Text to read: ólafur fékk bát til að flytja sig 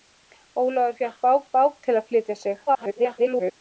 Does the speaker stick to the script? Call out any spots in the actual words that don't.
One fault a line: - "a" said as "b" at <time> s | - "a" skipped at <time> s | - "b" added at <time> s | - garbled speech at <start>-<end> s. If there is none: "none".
- "bát" added at 1.5 s
- garbled speech at 2.7-3.5 s